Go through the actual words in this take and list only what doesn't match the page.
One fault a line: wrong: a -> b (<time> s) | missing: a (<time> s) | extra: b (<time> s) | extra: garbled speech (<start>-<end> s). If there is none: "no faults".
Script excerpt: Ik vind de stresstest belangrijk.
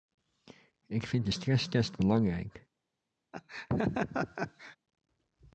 no faults